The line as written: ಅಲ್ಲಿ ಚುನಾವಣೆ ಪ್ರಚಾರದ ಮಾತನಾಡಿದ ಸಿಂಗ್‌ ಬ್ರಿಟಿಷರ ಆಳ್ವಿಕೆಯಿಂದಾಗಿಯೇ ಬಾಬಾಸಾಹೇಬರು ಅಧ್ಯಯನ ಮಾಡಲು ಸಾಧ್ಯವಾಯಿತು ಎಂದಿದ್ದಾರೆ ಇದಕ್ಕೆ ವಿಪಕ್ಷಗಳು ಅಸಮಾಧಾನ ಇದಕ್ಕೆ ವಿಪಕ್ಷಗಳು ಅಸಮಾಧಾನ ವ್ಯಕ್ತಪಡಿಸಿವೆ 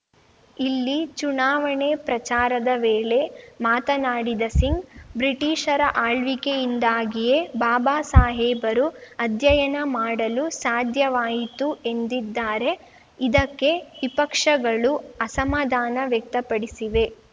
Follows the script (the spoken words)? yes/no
no